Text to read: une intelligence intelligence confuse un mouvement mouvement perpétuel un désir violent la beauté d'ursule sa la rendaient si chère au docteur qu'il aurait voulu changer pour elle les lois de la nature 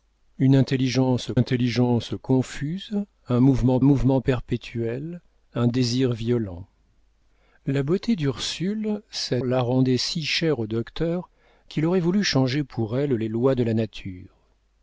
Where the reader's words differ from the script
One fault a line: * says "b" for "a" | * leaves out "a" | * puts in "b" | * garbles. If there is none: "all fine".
all fine